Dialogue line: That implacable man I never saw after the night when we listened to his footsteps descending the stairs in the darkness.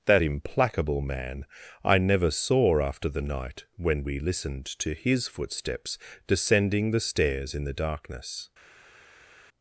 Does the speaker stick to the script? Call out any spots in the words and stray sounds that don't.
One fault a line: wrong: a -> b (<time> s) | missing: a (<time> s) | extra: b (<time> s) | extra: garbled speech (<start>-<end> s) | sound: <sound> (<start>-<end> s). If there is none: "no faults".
no faults